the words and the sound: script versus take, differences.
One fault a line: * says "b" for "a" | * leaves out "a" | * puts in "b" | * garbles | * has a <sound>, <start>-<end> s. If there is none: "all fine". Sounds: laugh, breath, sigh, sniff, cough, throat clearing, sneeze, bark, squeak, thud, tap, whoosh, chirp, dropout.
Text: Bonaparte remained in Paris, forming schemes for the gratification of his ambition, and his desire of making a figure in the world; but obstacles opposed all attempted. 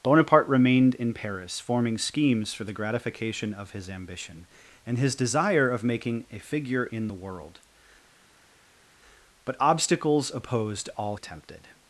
all fine